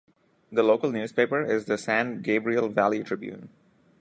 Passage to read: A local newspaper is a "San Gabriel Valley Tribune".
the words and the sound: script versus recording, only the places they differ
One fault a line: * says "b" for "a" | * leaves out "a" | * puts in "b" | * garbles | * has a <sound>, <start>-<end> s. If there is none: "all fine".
* says "The" for "A"
* says "the" for "a"